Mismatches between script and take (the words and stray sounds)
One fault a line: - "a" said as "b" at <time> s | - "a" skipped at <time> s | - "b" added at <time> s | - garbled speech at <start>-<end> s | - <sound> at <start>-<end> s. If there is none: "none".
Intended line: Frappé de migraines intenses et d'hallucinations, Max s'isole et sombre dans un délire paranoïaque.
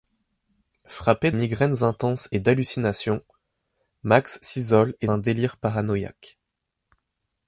- "de" skipped at 1.3 s
- "sombre dans" skipped at 5.1 s